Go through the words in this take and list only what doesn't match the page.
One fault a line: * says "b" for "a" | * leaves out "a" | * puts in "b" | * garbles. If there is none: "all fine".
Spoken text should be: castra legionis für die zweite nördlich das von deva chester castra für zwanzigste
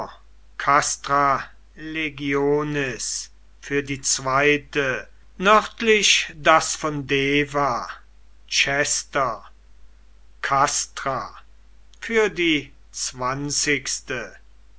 * puts in "die"